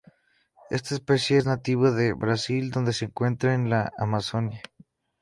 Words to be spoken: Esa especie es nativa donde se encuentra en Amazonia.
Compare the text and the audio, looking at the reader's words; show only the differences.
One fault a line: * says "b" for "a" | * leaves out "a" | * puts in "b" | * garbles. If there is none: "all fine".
* says "Esta" for "Esa"
* puts in "de Brasil"
* puts in "la"